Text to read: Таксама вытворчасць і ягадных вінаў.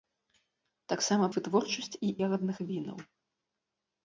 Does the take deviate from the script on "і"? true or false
false